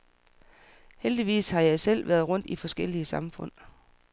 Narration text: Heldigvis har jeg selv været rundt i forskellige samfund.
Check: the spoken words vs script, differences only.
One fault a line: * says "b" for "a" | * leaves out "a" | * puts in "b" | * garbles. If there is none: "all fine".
all fine